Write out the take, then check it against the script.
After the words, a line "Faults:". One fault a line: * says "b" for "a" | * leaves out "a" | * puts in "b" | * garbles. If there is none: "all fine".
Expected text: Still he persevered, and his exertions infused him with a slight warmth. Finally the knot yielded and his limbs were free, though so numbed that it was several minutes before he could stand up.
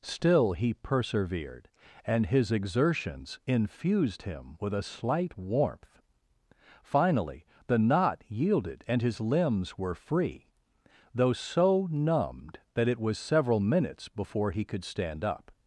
Still he persevered, and his exertions infused him with a slight warmth. Finally the knot yielded and his limbs were free, though so numbed that it was several minutes before he could stand up.
Faults:
all fine